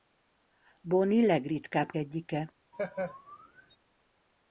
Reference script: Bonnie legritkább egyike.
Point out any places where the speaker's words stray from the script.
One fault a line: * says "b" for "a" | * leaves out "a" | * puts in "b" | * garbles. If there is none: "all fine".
all fine